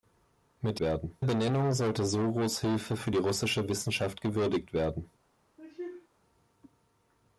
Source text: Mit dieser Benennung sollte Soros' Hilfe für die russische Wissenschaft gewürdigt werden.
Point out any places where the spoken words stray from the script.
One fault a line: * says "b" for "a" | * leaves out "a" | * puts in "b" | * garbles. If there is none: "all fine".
* says "werden" for "dieser"